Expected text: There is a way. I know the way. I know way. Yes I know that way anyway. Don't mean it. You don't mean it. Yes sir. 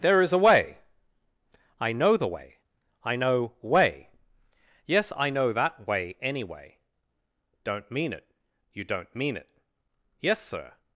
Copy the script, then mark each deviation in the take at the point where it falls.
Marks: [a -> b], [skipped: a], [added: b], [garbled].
There is a way. I know the way. I know way. Yes I know that way anyway. Don't mean it. You don't mean it. Yes sir.